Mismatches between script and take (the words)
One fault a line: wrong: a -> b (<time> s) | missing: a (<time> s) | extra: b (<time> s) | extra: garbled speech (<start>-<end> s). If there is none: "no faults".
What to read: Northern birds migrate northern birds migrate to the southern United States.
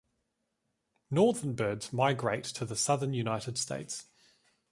missing: northern birds migrate (2.5 s)